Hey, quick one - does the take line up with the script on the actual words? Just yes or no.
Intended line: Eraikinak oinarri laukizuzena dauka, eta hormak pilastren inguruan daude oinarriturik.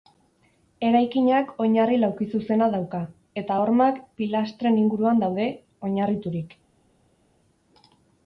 yes